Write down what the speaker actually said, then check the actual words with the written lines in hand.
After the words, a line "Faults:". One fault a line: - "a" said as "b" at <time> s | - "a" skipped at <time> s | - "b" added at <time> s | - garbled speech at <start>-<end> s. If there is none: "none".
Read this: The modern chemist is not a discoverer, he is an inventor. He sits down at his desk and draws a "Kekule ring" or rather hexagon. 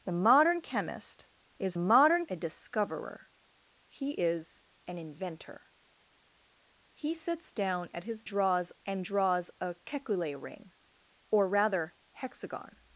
The modern chemist is modern a discoverer, he is an inventor. He sits down at his draws and draws a "Kekule ring" or rather hexagon.
Faults:
- "not" said as "modern" at 1.8 s
- "desk" said as "draws" at 8.3 s